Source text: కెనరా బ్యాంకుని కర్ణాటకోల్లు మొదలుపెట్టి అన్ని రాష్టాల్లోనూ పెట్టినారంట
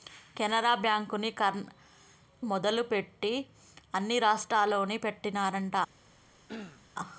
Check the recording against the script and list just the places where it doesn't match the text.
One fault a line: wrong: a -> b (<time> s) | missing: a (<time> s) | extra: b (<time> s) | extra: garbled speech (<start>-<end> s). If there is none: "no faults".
missing: కర్ణాటకోల్లు (1.3 s)